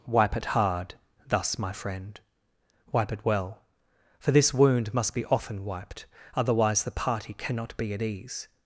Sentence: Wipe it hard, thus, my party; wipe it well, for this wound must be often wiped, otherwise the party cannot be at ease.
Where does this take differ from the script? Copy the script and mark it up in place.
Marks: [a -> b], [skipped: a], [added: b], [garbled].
Wipe it hard, thus, my [party; -> friend] wipe it well, for this wound must be often wiped, otherwise the party cannot be at ease.